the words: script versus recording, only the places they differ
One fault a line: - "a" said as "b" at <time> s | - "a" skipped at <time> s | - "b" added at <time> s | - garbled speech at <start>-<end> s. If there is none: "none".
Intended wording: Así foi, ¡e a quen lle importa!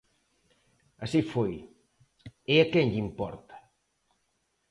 none